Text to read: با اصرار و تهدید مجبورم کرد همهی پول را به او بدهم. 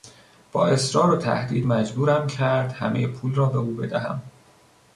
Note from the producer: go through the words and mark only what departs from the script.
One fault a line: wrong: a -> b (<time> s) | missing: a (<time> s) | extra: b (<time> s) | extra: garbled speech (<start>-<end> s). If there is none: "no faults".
no faults